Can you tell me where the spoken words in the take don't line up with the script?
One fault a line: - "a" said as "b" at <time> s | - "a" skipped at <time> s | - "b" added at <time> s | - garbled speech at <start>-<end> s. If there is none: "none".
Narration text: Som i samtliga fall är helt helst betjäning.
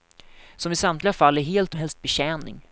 none